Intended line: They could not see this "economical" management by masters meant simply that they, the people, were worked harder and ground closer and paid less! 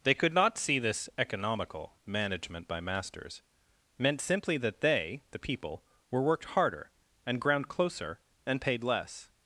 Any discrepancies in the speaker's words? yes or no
no